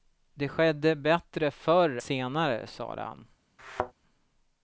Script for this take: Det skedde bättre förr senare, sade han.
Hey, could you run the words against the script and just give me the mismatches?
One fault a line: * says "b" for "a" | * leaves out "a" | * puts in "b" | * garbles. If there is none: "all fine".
all fine